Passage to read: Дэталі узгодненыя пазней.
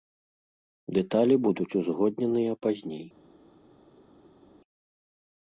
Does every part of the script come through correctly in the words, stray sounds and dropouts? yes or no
no